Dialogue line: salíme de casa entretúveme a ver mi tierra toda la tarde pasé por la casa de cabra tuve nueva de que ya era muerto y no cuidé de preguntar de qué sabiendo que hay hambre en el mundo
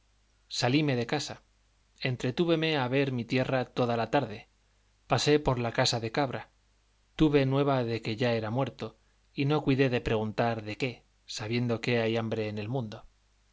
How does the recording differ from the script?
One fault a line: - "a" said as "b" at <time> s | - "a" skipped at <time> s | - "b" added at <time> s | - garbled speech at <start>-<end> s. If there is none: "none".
none